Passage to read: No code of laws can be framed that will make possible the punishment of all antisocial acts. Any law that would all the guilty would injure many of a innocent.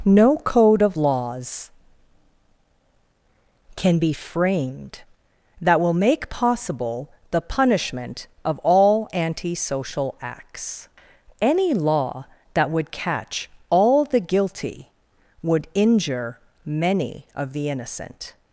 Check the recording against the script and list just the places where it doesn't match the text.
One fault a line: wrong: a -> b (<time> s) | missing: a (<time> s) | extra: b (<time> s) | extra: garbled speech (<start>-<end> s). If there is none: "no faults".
extra: catch (12.9 s)
wrong: a -> the (17.5 s)